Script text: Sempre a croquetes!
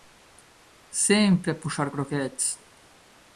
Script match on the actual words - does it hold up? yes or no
no